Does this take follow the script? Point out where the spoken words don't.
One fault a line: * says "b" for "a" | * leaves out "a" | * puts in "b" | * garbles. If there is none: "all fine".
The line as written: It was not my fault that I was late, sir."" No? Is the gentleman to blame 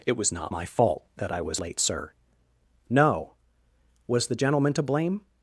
* says "Was" for "Is"